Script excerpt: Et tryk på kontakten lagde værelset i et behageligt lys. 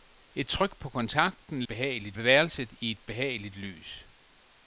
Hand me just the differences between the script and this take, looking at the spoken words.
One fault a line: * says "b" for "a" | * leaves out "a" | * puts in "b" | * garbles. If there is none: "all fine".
* says "behageligt" for "lagde"